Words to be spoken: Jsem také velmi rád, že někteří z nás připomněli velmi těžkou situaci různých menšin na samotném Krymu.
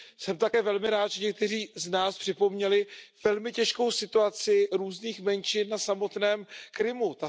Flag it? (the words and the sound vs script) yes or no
no